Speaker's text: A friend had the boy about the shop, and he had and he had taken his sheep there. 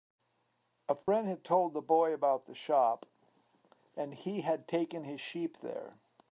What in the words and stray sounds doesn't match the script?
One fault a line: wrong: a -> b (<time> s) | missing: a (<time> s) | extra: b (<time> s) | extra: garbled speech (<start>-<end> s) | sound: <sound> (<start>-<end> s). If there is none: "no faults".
sound: dropout (1.0-1.1 s)
extra: told (1.4 s)
missing: and he had (4.7 s)